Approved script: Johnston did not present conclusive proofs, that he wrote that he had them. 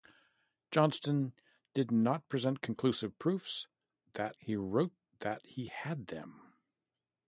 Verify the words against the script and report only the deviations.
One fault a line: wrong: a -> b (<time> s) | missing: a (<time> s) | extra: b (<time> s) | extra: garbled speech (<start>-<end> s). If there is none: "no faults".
no faults